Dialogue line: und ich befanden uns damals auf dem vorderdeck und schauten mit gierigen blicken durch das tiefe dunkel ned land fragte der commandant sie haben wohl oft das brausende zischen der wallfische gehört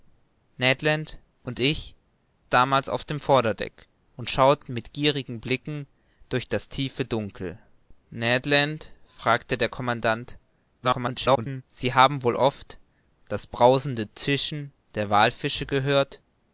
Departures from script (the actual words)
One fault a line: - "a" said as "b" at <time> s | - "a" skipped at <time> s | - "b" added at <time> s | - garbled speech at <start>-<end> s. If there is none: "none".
- "befanden uns" skipped at 1.9 s
- garbled speech at 10.8-11.6 s